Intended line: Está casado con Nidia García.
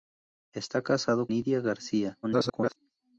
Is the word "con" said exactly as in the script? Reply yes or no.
no